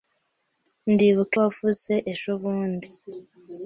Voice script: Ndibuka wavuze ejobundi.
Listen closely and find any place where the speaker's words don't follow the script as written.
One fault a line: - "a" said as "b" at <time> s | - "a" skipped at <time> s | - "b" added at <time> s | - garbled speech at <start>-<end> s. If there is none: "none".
none